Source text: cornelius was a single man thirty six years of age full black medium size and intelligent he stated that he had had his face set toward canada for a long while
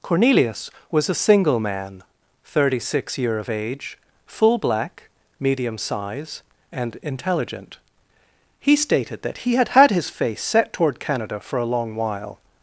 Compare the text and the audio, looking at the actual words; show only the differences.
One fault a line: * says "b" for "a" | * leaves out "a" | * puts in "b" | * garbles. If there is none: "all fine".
* says "year" for "years"